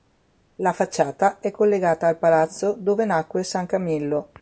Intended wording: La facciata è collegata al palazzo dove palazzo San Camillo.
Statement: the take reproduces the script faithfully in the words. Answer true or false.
false